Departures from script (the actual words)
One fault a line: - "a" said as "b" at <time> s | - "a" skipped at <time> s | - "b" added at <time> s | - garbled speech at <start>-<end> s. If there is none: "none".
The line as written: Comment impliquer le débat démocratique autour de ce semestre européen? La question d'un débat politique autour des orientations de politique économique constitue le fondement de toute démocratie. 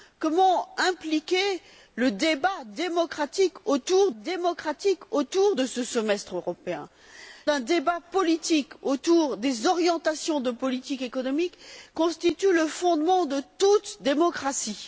- "démocratique autour" added at 4.2 s
- "La question" skipped at 6.9 s